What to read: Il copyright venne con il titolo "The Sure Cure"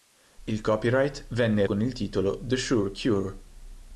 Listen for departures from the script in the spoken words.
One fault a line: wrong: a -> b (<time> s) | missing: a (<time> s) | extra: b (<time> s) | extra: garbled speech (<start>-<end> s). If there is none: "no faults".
no faults